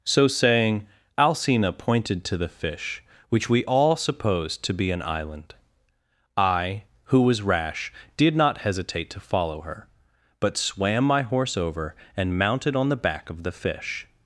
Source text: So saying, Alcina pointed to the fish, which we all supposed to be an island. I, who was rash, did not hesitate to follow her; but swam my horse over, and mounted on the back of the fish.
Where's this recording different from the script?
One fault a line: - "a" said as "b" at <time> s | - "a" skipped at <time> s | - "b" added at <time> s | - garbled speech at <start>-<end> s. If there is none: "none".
none